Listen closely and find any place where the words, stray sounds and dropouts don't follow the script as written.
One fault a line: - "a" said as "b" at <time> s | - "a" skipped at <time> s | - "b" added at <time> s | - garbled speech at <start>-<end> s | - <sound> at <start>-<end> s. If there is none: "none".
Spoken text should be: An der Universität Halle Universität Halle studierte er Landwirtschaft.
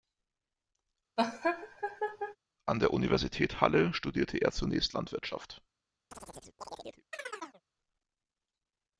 - laugh at 1.2-2.4 s
- "Universität Halle" skipped at 3.9 s
- "zunächst" added at 4.5 s
- chirp at 6.1-7.6 s